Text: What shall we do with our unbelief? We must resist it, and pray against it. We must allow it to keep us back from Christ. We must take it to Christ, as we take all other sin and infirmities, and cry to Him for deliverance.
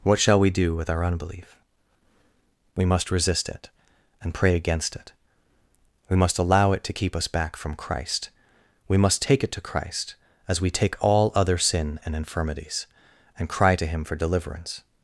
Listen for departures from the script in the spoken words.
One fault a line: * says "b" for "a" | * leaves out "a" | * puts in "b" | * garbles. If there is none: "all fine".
all fine